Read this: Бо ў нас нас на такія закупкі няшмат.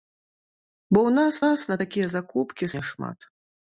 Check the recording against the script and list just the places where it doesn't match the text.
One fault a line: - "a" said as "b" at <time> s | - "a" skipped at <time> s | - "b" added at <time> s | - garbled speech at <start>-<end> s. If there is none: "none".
none